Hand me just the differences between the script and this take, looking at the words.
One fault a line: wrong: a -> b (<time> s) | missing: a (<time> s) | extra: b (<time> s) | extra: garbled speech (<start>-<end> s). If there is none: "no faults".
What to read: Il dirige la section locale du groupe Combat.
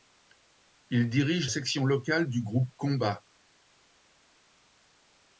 missing: la (1.5 s)